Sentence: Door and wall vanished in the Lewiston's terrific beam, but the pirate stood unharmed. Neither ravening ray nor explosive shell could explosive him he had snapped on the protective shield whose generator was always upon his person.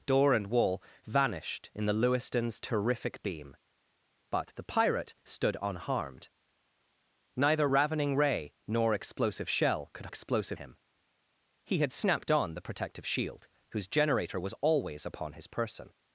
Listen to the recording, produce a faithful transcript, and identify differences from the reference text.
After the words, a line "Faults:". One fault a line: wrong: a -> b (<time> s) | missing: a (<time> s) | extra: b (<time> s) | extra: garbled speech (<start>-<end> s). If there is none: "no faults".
Door and wall vanished in the Lewiston's terrific beam, but the pirate stood unharmed. Neither ravening ray nor explosive shell could explosive him he had snapped on the protective shield whose generator was always upon his person.
Faults:
no faults